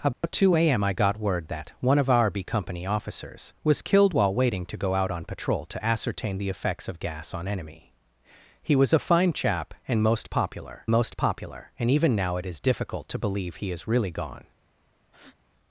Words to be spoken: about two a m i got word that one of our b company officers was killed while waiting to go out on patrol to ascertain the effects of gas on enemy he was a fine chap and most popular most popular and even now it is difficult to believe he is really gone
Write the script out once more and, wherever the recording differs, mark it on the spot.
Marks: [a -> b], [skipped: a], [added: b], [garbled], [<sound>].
about [dropout] two a m i got word that one of our b company officers was killed while waiting to go out on patrol to ascertain the effects of gas on enemy he was a fine chap and most popular most popular and even now it is difficult to believe he is really gone [breath]